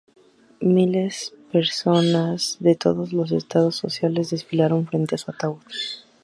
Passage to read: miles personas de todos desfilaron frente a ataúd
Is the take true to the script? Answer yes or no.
no